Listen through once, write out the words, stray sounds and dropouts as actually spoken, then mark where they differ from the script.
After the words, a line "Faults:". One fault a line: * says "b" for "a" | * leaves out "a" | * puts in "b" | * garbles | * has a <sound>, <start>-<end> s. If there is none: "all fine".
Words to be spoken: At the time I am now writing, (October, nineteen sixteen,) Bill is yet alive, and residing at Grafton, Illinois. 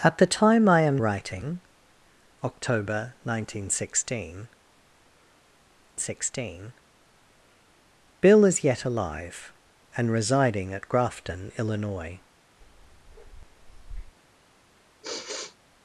At the time I am writing, (October, nineteen sixteen sixteen,) Bill is yet alive, and residing at Grafton, Illinois.
Faults:
* leaves out "now"
* puts in "sixteen"
* has a bark, 12.6-14.2 s
* has a sigh, 15.0-15.6 s